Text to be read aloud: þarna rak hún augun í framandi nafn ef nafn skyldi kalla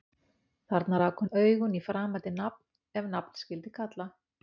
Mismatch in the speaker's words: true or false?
false